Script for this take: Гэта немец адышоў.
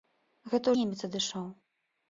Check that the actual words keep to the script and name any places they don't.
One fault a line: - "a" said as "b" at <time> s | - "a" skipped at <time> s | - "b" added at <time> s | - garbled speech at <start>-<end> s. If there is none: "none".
none